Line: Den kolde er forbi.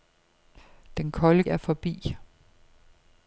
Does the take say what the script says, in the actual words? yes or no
yes